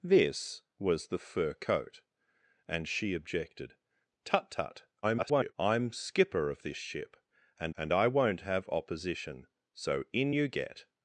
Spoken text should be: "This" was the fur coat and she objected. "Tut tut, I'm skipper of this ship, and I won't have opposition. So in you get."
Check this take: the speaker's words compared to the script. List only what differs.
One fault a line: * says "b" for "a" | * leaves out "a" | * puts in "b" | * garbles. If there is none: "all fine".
* garbles
* puts in "and"